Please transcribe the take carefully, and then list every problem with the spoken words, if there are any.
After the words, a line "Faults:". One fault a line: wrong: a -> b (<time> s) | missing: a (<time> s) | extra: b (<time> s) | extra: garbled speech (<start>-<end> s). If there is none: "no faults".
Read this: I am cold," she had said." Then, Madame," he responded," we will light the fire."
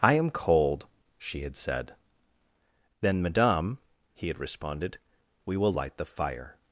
I am cold," she had said." Then, Madame," he had responded," we will light the fire."
Faults:
extra: had (4.3 s)